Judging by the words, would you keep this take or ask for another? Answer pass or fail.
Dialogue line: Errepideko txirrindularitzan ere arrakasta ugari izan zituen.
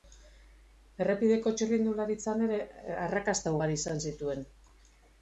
pass